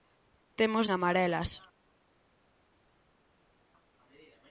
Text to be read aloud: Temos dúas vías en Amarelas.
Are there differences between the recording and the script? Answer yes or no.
yes